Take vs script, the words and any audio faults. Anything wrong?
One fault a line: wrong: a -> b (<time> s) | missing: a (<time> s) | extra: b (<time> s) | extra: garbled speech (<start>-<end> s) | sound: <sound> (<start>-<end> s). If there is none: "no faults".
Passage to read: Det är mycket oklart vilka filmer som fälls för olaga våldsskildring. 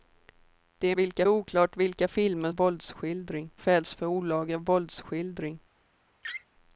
wrong: mycket -> vilka (0.9 s)
wrong: som -> våldsskildring (2.5 s)
sound: laugh (6.2-6.5 s)